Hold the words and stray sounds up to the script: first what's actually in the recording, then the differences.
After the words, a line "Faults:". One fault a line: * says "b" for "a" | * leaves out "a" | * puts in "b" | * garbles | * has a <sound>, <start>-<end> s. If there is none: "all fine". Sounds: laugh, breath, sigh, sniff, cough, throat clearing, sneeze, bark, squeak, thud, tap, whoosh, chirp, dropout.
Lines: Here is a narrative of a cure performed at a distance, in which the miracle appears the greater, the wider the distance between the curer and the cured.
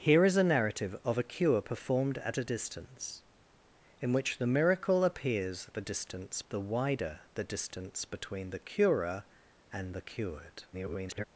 Here is a narrative of a cure performed at a distance, in which the miracle appears the distance, the wider the distance between the curer and the cured. [garbled]
Faults:
* says "distance" for "greater"
* garbles